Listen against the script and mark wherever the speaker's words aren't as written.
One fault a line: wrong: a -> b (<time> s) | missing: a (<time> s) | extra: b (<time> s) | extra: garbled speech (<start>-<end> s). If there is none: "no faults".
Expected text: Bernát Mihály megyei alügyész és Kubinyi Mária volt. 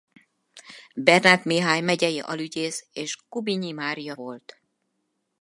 no faults